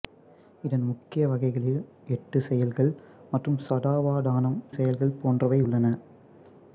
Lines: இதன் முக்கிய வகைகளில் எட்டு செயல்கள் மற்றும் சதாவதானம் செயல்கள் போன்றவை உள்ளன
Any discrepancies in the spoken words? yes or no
no